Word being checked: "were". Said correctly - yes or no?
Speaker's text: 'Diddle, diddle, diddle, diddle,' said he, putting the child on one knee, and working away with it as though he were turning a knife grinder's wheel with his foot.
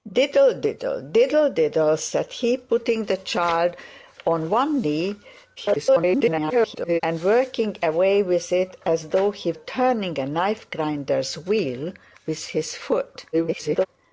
no